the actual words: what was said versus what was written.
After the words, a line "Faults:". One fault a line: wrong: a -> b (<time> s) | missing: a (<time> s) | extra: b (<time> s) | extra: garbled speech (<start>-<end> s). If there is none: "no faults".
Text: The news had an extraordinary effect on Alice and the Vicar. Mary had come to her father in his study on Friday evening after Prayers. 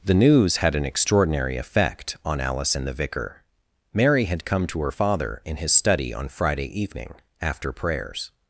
The news had an extraordinary effect on Alice and the Vicar. Mary had come to her father in his study on Friday evening after Prayers.
Faults:
no faults